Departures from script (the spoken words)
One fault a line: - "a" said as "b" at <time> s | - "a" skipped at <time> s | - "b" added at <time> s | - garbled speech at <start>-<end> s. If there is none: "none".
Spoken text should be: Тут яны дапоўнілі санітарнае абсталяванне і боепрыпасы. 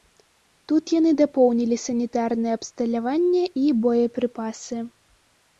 none